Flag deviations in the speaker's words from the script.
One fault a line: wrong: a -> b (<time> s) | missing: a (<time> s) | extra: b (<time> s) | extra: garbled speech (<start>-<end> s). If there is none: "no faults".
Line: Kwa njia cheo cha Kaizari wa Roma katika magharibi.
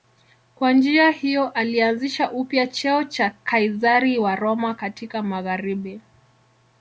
extra: hiyo alianzisha upya (1.1 s)